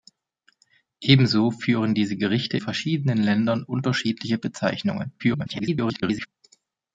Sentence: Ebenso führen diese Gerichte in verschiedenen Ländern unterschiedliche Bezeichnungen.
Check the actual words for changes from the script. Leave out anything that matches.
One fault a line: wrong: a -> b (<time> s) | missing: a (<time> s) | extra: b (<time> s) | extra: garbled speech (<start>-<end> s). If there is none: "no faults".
missing: in (2.6 s)
extra: garbled speech (5.2-6.3 s)